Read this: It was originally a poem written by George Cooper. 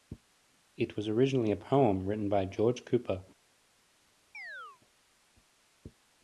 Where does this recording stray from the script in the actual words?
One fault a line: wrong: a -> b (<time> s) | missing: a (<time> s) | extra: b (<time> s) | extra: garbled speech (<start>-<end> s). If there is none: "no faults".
no faults